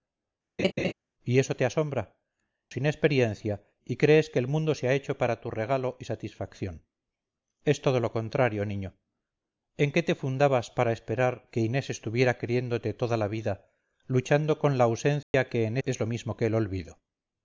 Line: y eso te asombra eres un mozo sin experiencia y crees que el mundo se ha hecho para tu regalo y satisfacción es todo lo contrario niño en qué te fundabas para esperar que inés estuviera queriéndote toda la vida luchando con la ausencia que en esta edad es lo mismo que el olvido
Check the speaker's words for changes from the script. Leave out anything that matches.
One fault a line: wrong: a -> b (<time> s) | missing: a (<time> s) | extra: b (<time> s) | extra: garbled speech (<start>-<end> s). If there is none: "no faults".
missing: eres un mozo (2.2 s)
missing: esta edad (15.8 s)